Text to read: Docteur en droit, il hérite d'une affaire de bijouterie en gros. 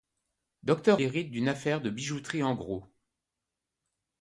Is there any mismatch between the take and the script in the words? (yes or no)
yes